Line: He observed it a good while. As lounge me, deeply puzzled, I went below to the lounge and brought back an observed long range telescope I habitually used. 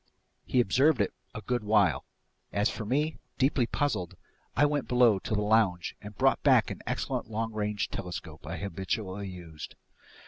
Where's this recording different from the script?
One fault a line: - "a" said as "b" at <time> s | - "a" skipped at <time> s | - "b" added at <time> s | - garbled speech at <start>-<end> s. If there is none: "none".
- "lounge" said as "for" at 2.7 s
- "observed" said as "excellent" at 6.9 s